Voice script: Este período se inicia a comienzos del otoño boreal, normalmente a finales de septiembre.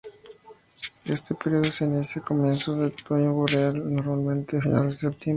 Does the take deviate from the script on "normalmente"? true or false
false